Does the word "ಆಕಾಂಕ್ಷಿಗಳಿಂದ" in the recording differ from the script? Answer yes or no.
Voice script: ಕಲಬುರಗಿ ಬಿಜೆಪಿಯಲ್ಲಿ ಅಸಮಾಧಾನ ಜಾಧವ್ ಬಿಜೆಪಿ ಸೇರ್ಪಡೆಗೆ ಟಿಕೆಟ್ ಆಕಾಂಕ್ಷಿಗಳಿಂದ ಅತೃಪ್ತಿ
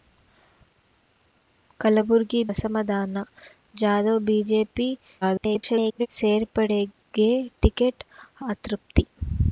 yes